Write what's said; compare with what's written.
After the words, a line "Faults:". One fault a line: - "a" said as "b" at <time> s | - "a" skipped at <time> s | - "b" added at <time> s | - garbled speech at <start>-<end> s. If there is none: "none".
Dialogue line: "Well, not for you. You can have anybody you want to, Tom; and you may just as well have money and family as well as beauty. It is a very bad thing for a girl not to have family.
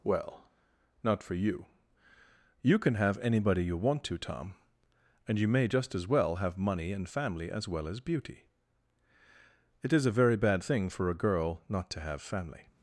"Well, not for you. You can have anybody you want to, Tom; and you may just as well have money and family as well as beauty. It is a very bad thing for a girl not to have family.
Faults:
none